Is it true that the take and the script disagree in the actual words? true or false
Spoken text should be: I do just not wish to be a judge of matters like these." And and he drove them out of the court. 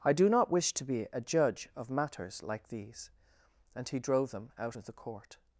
true